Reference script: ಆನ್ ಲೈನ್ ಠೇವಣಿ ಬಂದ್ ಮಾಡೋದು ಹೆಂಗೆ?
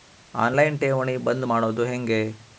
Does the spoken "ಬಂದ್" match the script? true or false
true